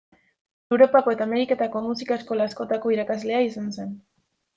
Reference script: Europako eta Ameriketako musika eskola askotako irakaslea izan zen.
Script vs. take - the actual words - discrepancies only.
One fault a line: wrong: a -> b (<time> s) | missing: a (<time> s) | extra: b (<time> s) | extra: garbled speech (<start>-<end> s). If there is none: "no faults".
no faults